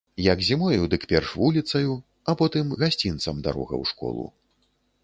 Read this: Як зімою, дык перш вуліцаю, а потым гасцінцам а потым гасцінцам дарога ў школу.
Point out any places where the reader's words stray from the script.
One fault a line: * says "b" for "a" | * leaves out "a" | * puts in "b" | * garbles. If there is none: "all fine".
* leaves out "а потым гасцінцам"